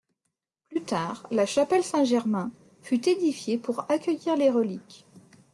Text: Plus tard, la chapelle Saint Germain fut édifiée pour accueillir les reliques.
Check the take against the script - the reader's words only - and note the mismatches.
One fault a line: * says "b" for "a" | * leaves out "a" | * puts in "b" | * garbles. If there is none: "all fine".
all fine